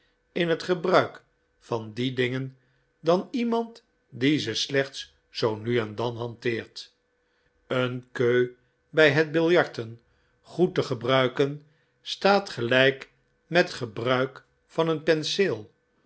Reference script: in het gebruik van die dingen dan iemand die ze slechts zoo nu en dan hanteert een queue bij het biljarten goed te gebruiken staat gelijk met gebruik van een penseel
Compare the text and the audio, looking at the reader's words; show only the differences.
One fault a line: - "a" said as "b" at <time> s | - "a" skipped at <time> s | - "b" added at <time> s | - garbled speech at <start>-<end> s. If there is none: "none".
none